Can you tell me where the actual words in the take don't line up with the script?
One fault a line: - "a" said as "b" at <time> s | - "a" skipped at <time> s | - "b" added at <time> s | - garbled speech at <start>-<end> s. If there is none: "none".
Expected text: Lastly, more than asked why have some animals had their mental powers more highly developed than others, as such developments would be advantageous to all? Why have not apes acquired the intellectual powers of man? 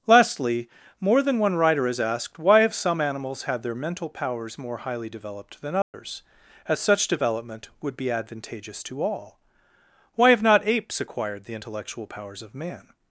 - "one writer has" added at 1.4 s
- "developments" said as "development" at 7.1 s